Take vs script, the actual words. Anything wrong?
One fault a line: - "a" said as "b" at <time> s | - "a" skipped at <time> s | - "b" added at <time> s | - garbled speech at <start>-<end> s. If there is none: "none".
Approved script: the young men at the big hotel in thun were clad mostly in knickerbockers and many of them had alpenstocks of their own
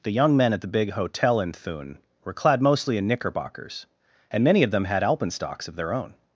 none